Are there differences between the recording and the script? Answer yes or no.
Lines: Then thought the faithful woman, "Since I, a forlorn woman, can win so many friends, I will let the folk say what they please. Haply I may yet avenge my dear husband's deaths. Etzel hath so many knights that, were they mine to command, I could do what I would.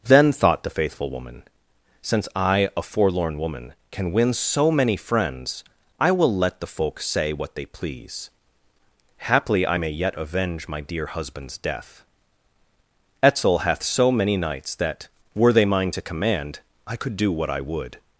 yes